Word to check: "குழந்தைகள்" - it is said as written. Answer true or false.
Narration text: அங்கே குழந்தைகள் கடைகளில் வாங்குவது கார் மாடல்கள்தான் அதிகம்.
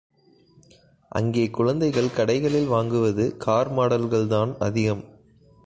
true